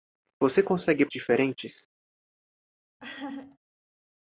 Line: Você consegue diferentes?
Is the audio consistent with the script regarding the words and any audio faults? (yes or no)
no